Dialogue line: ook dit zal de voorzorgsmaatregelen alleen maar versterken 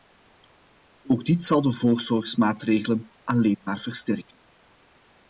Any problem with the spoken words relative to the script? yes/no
no